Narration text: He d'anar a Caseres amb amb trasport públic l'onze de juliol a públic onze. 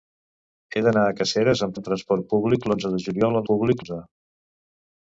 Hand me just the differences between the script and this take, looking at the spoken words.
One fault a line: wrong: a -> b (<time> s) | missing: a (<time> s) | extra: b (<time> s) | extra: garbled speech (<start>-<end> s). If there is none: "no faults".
no faults